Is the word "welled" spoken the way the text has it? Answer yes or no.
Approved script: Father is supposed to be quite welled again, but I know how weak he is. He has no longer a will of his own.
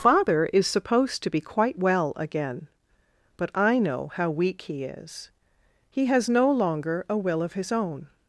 no